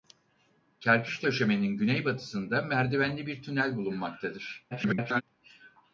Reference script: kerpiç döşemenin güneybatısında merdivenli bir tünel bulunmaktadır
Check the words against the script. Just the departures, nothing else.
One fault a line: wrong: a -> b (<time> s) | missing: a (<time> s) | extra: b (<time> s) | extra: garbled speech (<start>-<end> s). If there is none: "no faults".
extra: garbled speech (4.7-5.2 s)